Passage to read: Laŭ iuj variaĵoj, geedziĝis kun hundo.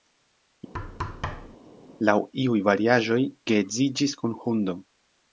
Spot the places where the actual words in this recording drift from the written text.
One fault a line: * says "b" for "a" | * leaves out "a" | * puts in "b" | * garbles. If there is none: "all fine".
all fine